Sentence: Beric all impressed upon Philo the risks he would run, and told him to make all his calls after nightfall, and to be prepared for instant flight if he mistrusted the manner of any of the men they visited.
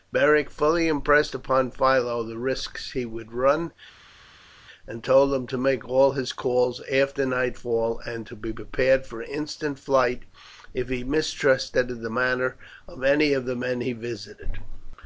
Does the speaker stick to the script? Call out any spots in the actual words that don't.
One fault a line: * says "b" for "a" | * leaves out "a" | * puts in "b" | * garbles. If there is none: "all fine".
* says "fully" for "all"
* says "he" for "they"